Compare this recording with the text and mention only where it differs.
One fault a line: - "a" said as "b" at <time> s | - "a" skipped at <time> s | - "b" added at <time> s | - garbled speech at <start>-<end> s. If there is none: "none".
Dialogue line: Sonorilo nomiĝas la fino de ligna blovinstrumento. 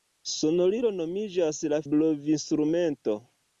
- "fino de ligna" skipped at 1.8 s